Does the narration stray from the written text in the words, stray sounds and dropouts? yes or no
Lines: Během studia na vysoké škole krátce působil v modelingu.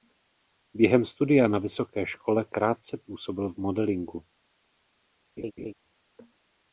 yes